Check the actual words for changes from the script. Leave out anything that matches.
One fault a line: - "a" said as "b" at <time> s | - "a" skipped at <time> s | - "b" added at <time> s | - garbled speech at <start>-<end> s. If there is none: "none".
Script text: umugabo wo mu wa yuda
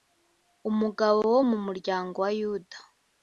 - "muryango" added at 1.6 s